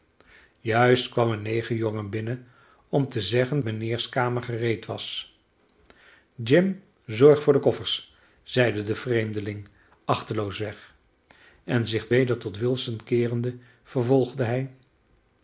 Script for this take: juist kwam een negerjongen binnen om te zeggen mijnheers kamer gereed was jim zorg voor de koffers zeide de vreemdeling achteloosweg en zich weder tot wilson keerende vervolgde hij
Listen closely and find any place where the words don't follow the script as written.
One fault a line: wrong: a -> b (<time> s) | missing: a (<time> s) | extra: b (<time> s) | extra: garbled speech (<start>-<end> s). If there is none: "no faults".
no faults